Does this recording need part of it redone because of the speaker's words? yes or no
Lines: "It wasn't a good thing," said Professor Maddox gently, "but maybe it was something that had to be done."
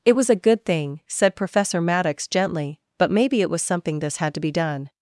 yes